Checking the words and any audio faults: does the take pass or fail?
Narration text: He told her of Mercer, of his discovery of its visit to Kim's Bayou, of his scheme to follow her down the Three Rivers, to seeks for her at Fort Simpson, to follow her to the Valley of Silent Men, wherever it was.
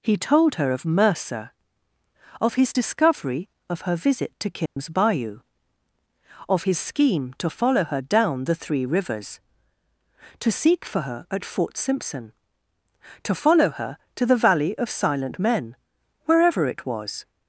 fail